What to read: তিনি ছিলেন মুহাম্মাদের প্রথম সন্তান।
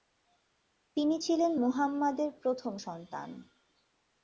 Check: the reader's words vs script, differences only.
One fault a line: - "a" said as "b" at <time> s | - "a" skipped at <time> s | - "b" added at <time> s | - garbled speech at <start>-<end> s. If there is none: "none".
none